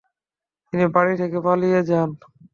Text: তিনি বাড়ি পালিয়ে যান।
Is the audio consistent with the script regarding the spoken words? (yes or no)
no